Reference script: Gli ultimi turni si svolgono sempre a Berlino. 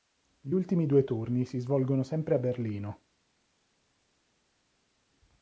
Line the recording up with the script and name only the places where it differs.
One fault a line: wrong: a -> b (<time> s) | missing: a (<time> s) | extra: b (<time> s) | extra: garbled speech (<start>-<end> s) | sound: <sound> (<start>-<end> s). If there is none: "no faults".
extra: due (0.9 s)